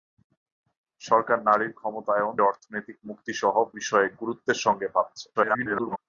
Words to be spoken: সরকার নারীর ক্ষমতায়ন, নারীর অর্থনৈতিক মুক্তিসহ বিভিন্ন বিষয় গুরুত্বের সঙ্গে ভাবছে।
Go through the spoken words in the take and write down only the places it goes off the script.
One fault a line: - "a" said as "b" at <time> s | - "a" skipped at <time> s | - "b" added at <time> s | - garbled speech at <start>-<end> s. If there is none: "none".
- "নারীর" skipped at 2.3 s
- "বিভিন্ন" skipped at 3.5 s
- garbled speech at 5.3-6.0 s